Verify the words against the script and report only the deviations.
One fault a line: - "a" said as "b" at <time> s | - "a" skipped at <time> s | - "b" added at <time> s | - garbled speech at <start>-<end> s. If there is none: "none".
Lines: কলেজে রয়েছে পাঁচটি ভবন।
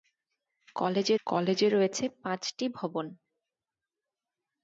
- "কলেজে" added at 1.3 s